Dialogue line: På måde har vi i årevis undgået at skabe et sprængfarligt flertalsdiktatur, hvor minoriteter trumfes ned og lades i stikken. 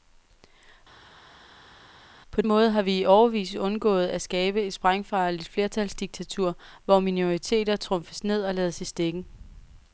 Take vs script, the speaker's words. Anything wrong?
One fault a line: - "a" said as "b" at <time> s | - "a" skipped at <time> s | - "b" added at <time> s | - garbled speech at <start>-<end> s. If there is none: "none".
none